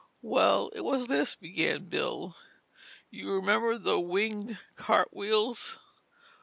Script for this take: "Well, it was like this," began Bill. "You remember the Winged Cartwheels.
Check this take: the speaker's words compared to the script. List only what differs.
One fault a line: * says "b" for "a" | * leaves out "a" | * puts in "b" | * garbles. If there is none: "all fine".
* leaves out "like"